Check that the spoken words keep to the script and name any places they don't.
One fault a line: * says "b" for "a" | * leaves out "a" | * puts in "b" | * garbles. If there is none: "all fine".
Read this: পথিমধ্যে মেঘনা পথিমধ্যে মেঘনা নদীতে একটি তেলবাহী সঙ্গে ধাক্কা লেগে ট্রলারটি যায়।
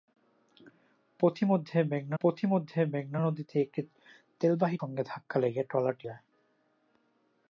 all fine